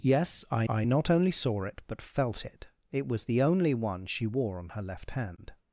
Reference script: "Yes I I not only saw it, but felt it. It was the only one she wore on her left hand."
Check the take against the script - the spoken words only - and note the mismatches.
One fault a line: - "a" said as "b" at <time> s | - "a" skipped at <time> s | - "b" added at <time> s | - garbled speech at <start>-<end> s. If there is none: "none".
none